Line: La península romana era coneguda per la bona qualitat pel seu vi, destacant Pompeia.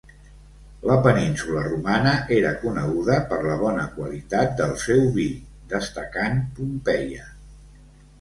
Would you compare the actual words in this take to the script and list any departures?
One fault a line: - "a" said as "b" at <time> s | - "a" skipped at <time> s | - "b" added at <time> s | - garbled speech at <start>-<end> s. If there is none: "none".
- "pel" said as "del" at 4.6 s